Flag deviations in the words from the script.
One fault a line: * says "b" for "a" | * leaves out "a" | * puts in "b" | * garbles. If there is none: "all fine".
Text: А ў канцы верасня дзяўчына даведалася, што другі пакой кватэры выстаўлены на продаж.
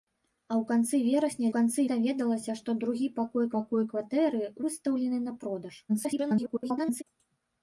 * says "канцы" for "дзяўчына"
* puts in "пакой"
* garbles